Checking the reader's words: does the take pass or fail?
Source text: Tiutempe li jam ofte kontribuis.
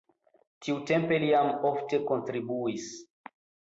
pass